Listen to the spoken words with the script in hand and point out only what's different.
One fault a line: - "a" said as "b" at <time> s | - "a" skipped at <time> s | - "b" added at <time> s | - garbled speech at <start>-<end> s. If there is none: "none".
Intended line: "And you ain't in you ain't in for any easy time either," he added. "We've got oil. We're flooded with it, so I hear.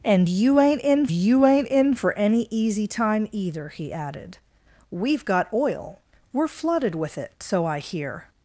none